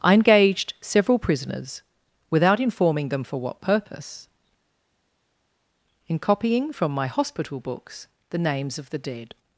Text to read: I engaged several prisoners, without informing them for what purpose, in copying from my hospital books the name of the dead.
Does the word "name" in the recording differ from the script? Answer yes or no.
yes